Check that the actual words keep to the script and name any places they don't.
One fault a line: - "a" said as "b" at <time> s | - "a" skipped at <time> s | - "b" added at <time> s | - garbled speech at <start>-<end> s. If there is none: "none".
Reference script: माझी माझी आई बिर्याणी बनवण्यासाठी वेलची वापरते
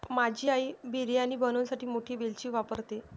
- "माझी" skipped at 0.5 s
- "मोठी" added at 1.9 s